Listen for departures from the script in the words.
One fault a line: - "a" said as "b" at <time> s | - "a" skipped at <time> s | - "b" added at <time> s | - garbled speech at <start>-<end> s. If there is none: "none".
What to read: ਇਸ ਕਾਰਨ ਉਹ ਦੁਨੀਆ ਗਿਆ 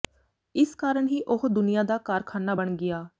- "ਹੀ" added at 1.0 s
- "ਦਾ ਕਾਰਖ਼ਾਨਾ ਬਣ" added at 1.8 s